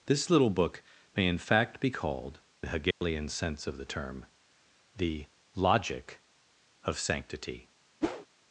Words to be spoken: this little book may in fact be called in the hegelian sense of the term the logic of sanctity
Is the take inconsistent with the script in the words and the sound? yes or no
yes